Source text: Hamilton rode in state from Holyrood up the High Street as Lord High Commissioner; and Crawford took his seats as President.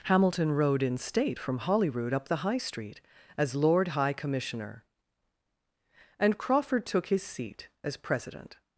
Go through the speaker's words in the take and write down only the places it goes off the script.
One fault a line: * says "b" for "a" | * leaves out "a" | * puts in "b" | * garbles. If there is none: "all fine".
* says "seat" for "seats"